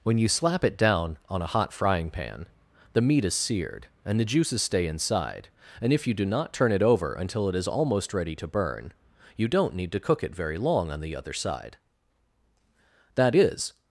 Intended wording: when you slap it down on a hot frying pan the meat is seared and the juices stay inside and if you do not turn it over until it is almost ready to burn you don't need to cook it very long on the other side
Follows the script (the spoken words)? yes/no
no